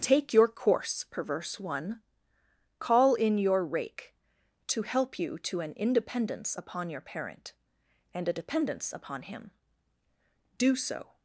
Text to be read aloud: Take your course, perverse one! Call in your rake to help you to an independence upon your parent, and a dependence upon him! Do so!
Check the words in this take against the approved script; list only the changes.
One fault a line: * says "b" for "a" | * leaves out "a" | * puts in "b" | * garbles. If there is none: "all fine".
all fine